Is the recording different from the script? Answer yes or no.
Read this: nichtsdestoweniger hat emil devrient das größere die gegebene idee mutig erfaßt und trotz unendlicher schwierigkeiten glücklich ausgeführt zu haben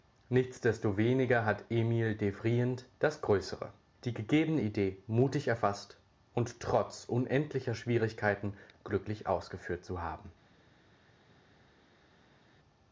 no